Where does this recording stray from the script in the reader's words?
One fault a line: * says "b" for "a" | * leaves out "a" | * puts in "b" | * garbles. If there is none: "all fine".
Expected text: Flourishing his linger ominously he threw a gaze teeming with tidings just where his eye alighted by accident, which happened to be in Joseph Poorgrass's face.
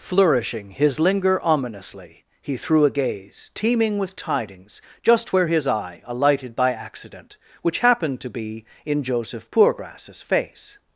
all fine